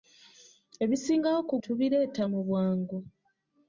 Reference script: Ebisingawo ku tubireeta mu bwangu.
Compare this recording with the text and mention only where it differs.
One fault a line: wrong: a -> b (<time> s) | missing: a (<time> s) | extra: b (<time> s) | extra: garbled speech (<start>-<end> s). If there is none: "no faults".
no faults